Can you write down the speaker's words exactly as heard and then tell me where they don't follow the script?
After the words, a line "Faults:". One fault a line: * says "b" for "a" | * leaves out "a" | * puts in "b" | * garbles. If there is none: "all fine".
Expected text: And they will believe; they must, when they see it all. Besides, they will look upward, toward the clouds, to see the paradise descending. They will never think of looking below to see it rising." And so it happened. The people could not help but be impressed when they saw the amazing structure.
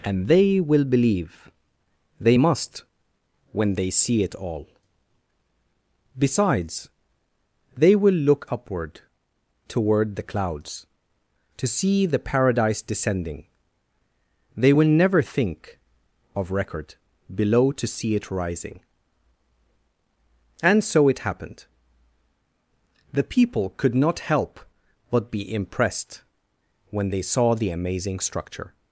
And they will believe; they must, when they see it all. Besides, they will look upward, toward the clouds, to see the paradise descending. They will never think of record below to see it rising." And so it happened. The people could not help but be impressed when they saw the amazing structure.
Faults:
* says "record" for "looking"